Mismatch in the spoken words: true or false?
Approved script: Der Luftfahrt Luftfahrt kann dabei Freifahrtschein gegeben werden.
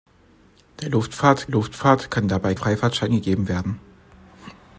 false